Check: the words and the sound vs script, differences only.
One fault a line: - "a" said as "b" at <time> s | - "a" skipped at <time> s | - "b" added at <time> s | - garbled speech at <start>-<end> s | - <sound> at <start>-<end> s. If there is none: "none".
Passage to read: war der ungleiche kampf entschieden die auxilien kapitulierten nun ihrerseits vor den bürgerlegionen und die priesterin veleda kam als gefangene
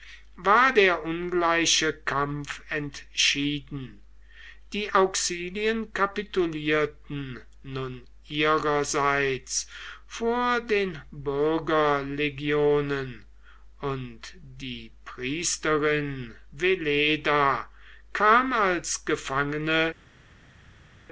none